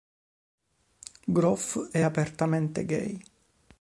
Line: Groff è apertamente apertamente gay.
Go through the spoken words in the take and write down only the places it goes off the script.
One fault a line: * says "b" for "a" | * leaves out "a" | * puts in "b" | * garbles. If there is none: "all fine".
* leaves out "apertamente"